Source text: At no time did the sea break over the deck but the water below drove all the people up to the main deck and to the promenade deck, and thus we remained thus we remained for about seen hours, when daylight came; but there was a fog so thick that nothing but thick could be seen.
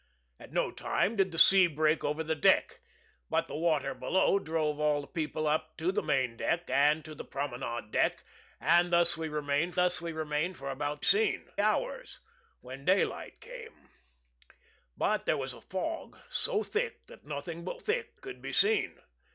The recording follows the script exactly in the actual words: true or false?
true